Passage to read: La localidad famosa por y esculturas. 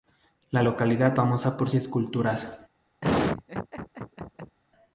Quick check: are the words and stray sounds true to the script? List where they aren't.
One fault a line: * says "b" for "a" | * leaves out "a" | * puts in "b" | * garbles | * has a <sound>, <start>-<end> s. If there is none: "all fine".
* has a laugh, 3.0-4.6 s